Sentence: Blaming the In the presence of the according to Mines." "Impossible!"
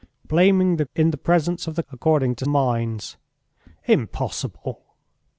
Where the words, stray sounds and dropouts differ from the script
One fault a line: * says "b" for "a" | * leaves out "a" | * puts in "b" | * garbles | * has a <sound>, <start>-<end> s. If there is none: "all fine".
all fine